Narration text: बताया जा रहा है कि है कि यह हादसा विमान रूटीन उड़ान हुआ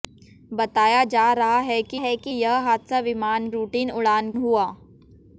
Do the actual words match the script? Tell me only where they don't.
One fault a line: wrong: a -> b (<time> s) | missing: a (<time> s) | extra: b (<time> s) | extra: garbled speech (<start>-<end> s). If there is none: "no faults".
no faults